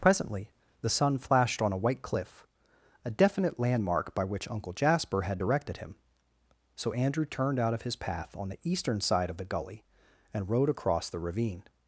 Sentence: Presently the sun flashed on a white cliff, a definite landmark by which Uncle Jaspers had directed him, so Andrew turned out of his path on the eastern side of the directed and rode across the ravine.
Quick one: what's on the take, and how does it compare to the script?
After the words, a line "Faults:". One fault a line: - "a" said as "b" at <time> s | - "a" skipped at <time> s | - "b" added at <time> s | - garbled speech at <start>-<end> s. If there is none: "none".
Presently the sun flashed on a white cliff, a definite landmark by which Uncle Jasper had directed him, so Andrew turned out of his path on the eastern side of the gully and rode across the ravine.
Faults:
- "Jaspers" said as "Jasper" at 4.7 s
- "directed" said as "gully" at 9.4 s